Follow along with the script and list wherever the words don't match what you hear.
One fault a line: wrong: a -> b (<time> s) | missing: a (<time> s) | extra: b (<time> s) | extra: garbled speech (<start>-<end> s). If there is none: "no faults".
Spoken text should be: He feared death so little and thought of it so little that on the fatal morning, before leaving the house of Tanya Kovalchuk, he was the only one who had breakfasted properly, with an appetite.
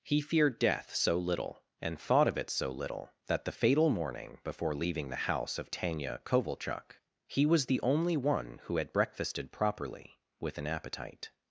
missing: on (3.5 s)